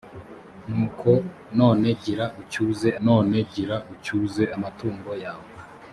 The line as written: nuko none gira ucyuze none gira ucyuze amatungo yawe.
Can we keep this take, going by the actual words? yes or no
yes